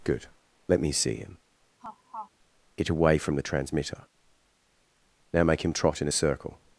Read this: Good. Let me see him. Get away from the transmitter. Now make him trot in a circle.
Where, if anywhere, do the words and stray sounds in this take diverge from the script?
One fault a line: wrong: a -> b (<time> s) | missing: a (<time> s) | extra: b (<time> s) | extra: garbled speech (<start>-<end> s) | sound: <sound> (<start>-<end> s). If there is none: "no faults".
sound: laugh (1.8-2.3 s)